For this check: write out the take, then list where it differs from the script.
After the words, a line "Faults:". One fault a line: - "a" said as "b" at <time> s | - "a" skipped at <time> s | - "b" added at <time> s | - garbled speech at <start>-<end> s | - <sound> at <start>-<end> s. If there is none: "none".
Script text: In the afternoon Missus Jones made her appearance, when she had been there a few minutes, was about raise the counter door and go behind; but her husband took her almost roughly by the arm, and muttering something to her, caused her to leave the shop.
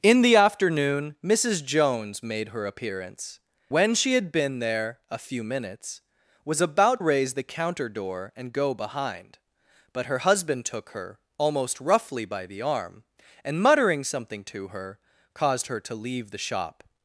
In the afternoon Missus Jones made her appearance, when she had been there a few minutes, was about raise the counter door and go behind; but her husband took her almost roughly by the arm, and muttering something to her, caused her to leave the shop.
Faults:
none